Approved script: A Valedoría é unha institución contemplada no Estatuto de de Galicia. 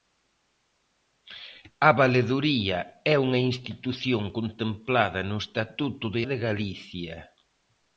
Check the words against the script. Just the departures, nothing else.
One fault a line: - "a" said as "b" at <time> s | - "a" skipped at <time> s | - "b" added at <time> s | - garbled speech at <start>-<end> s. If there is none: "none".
none